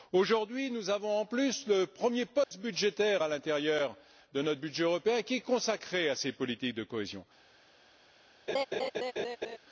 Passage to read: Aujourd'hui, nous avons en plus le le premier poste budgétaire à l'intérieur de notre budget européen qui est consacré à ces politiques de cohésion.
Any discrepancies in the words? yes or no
yes